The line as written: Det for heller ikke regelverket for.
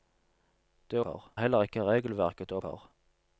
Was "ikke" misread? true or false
false